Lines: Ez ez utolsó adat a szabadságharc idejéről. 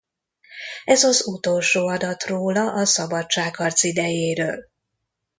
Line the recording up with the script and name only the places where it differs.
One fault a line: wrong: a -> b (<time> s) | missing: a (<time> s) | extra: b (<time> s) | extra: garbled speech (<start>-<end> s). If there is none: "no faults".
wrong: ez -> az (1.0 s)
extra: róla (2.2 s)